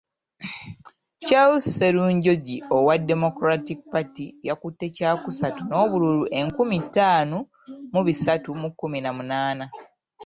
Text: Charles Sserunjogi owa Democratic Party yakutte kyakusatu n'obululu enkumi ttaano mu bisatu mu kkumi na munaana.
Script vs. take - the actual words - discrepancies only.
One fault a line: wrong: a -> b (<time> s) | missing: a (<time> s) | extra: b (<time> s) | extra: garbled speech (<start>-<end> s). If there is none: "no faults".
no faults